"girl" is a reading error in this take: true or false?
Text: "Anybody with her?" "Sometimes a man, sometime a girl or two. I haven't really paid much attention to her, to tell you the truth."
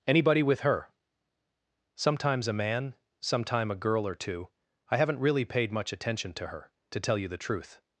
false